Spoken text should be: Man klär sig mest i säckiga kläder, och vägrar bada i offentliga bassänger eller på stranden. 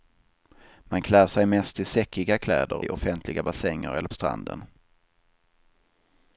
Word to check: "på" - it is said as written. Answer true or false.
false